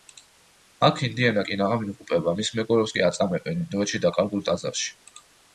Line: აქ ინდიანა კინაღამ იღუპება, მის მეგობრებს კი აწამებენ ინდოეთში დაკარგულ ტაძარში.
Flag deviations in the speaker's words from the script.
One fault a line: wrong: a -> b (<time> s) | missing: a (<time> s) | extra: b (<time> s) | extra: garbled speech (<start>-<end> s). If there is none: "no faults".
no faults